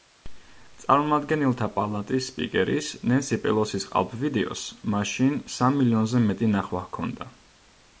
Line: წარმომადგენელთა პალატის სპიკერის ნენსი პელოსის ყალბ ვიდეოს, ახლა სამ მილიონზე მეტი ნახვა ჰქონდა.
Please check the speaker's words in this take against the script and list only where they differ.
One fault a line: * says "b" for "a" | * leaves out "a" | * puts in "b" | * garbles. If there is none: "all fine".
* says "მაშინ" for "ახლა"